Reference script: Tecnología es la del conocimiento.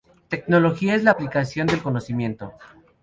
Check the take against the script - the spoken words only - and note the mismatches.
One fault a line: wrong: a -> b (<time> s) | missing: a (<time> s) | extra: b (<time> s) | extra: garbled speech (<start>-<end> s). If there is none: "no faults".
extra: aplicación (1.1 s)